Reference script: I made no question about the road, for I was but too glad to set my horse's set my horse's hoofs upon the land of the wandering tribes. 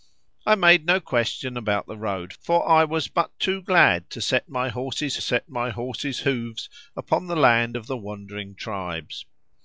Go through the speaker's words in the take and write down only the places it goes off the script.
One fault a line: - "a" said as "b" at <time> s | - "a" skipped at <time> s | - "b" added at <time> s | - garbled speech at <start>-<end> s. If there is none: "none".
none